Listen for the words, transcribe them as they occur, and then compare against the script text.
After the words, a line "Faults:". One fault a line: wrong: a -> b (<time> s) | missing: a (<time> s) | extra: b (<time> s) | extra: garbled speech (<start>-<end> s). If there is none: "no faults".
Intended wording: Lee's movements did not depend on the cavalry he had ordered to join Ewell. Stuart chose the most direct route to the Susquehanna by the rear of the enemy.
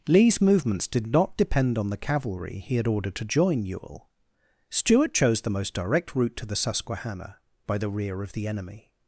Lee's movements did not depend on the cavalry he had ordered to join Ewell. Stuart chose the most direct route to the Susquehanna by the rear of the enemy.
Faults:
no faults